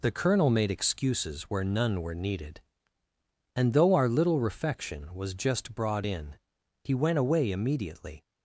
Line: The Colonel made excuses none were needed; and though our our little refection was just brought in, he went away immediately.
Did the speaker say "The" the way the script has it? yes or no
yes